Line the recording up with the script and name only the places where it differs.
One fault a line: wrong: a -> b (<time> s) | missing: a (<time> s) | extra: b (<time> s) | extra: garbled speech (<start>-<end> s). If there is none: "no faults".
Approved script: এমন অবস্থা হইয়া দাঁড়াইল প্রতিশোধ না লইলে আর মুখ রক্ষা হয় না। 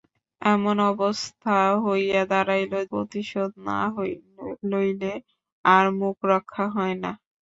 no faults